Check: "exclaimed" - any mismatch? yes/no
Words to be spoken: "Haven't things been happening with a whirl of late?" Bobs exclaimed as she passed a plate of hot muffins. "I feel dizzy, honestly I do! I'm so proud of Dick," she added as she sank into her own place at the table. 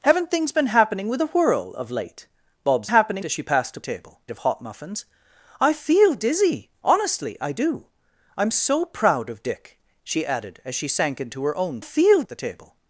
yes